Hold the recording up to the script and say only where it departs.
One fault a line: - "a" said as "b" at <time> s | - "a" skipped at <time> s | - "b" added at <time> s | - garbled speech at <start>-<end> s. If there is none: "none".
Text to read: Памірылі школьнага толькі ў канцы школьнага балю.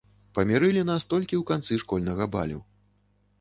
- "школьнага" said as "нас" at 0.9 s